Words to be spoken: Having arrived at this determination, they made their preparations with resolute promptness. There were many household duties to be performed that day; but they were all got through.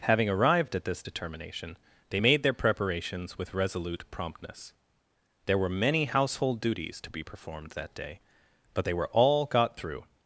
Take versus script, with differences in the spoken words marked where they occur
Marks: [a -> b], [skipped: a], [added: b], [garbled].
Having arrived at this determination, they made their preparations with resolute promptness. There were many household duties to be performed that day; but they were all got through.